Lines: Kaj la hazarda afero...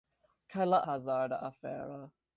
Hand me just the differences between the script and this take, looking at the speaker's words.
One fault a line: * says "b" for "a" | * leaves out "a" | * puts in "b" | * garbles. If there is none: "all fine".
all fine